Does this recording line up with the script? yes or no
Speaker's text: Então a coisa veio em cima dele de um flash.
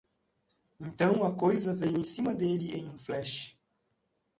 no